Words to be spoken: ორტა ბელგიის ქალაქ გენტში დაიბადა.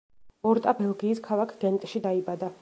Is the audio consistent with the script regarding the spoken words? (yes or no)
yes